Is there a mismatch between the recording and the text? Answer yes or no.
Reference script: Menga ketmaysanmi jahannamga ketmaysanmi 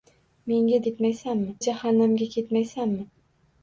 no